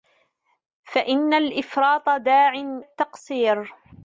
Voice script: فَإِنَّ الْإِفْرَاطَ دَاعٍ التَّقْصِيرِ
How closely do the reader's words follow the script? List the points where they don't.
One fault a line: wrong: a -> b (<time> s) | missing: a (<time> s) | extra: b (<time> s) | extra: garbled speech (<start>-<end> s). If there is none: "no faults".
no faults